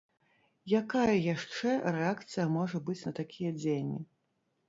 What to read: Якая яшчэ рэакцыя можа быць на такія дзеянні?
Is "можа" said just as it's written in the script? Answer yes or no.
yes